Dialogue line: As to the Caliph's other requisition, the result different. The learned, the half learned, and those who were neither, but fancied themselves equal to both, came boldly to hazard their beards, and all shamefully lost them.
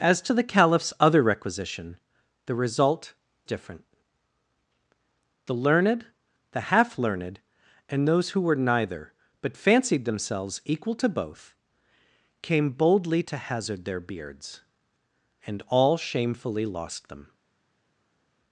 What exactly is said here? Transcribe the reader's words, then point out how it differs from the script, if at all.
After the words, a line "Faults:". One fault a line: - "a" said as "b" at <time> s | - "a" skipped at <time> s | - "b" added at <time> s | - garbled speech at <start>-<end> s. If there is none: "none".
As to the Caliph's other requisition, the result different. The learned, the half learned, and those who were neither, but fancied themselves equal to both, came boldly to hazard their beards, and all shamefully lost them.
Faults:
none